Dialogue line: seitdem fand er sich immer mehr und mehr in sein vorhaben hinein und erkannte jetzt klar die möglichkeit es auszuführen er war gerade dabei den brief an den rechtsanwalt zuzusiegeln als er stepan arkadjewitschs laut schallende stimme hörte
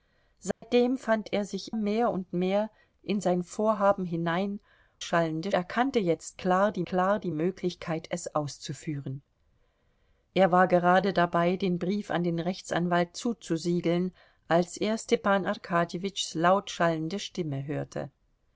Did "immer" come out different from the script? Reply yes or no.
yes